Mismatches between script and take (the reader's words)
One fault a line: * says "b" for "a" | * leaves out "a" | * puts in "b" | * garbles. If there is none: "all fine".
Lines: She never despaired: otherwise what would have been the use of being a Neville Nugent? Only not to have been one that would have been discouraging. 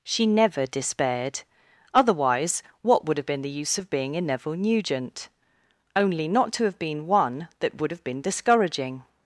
all fine